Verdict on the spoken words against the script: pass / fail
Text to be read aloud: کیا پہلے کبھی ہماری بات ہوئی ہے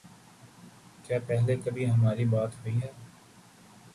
pass